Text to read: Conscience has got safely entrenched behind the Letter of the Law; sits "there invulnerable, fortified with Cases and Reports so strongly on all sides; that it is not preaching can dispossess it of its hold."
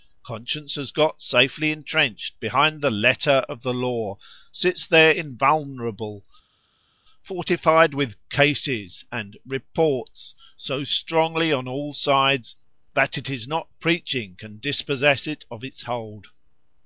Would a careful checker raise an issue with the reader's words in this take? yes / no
no